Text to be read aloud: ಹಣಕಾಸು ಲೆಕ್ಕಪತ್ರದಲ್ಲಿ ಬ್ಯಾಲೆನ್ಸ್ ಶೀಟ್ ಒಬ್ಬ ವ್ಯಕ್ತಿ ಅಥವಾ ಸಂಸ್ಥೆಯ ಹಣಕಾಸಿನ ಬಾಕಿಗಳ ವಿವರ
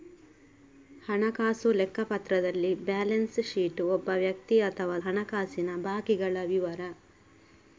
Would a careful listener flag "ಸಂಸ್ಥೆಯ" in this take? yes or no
yes